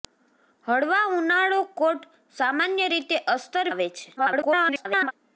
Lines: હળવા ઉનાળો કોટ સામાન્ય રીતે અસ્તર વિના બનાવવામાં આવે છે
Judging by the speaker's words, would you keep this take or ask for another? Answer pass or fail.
fail